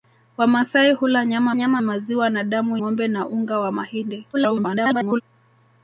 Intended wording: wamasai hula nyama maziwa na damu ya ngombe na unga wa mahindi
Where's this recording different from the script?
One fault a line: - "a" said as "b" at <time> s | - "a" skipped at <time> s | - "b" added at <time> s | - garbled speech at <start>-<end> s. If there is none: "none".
- "nyama" added at 1.5 s
- "ya" skipped at 2.8 s
- garbled speech at 4.3-5.2 s